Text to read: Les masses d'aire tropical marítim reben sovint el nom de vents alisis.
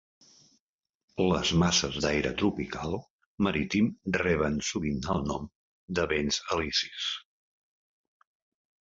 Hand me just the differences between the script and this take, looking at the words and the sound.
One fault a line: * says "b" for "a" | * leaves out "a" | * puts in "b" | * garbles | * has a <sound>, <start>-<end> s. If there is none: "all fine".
all fine